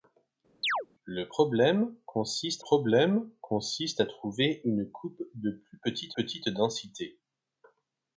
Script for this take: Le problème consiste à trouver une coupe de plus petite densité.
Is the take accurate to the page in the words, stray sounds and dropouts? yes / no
no